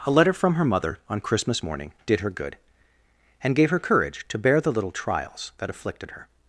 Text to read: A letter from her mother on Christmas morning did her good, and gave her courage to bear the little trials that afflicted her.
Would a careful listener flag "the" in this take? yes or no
no